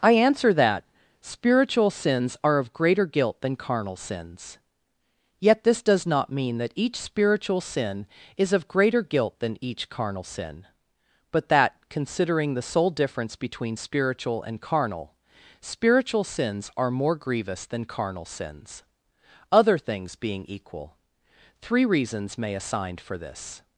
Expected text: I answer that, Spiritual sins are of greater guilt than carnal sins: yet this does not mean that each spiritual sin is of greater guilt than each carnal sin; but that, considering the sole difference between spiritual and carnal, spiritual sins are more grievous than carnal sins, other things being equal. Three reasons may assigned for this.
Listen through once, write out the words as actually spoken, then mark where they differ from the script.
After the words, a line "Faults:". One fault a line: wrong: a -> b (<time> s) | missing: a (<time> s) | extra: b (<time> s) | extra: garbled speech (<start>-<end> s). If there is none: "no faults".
I answer that, Spiritual sins are of greater guilt than carnal sins: yet this does not mean that each spiritual sin is of greater guilt than each carnal sin; but that, considering the sole difference between spiritual and carnal, spiritual sins are more grievous than carnal sins, other things being equal. Three reasons may assigned for this.
Faults:
no faults